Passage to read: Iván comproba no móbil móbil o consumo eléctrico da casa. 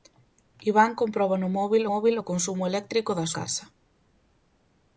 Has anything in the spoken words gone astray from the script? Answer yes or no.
no